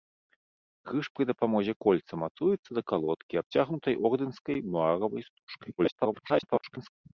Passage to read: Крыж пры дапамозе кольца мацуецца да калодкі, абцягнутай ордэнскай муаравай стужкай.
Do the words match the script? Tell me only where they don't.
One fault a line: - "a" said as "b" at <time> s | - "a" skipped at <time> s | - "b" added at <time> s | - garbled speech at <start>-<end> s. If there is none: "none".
- garbled speech at 5.8-6.9 s